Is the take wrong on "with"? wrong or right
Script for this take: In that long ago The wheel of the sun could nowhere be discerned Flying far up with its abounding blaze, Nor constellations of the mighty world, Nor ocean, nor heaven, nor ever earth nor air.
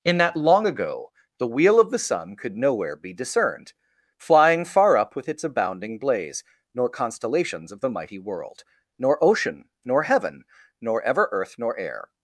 right